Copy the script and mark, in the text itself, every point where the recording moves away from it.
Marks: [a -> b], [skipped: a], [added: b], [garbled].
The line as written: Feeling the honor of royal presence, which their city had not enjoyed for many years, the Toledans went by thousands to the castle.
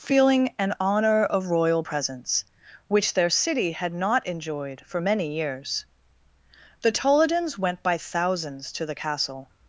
Feeling [the -> an] honor of royal presence, which their city had not enjoyed for many years, the Toledans went by thousands to the castle.